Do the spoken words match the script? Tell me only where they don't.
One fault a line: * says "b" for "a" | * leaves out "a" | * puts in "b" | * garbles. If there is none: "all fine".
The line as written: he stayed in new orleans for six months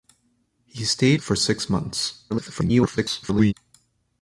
* leaves out "in new orleans"
* garbles